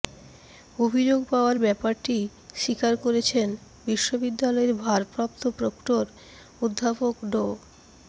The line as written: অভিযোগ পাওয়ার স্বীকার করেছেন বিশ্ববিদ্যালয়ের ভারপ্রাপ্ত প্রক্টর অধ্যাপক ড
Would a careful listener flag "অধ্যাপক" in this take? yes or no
no